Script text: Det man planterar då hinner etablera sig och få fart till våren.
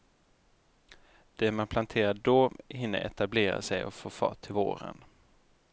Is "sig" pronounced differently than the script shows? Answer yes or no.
no